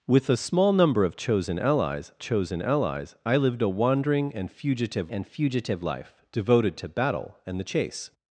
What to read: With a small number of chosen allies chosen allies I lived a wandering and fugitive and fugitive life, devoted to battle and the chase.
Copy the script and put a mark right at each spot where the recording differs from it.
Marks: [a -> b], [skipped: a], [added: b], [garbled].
With a small number of chosen allies chosen allies I lived a wandering and fugitive and fugitive life, devoted to battle and the chase.